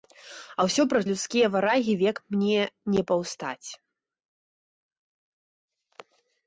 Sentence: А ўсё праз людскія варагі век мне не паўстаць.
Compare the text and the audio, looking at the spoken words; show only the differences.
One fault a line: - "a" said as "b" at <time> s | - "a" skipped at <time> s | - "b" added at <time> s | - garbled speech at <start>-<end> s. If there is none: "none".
none